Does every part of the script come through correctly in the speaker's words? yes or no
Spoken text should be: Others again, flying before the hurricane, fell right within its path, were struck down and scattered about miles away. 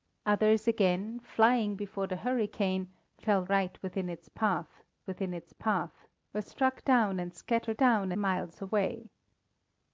no